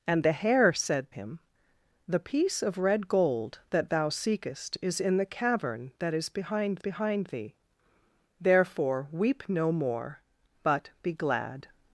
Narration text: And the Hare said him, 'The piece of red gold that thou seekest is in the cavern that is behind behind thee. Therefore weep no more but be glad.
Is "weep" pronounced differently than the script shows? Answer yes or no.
no